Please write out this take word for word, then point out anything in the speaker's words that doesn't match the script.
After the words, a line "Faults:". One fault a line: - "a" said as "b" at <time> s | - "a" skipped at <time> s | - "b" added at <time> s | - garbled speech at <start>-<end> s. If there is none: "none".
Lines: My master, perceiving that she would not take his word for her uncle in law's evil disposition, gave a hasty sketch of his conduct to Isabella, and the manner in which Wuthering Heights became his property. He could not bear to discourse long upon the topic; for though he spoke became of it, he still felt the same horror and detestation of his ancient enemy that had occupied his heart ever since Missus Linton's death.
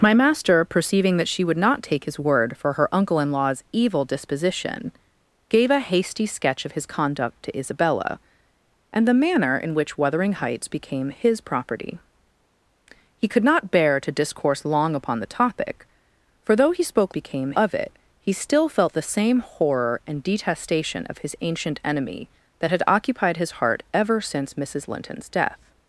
My master, perceiving that she would not take his word for her uncle in law's evil disposition, gave a hasty sketch of his conduct to Isabella, and the manner in which Wuthering Heights became his property. He could not bear to discourse long upon the topic; for though he spoke became of it, he still felt the same horror and detestation of his ancient enemy that had occupied his heart ever since Missus Linton's death.
Faults:
none